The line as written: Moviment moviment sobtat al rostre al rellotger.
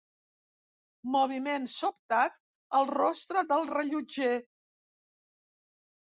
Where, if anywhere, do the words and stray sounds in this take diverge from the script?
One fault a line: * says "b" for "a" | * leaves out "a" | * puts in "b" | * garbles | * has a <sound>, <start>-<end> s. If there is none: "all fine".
* leaves out "moviment"
* says "del" for "al"